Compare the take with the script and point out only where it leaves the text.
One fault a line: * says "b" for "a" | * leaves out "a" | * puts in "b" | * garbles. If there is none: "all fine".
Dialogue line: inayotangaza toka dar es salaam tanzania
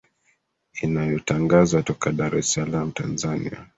all fine